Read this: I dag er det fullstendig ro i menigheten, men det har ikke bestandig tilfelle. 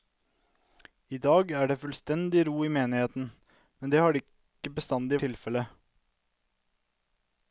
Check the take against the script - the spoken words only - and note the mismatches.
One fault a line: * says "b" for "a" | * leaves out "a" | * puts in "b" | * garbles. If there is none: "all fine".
all fine